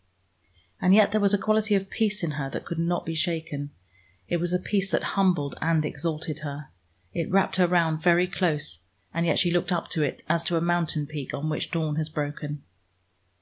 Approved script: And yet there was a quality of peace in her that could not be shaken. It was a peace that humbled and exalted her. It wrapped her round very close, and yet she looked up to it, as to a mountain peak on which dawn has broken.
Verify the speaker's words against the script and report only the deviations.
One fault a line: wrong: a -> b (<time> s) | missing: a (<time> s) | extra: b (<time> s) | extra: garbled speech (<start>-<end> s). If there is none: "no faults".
no faults